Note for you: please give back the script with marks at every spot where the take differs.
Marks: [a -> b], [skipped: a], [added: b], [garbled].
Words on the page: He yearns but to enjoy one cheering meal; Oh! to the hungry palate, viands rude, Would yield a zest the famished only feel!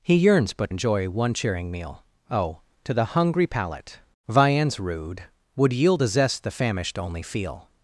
He yearns but [skipped: to] enjoy one cheering meal; Oh! to the hungry palate, viands rude, Would yield a zest the famished only feel!